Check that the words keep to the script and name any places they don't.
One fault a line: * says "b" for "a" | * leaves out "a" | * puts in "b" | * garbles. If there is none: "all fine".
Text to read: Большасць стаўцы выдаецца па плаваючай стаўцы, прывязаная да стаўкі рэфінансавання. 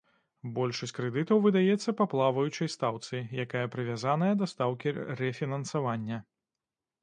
* says "крэдытаў" for "стаўцы"
* puts in "якая"